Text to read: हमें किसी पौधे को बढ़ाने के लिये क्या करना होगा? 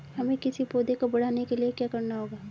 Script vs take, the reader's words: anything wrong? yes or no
no